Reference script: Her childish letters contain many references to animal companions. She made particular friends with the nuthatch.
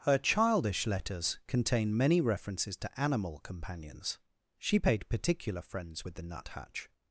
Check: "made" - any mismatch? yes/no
yes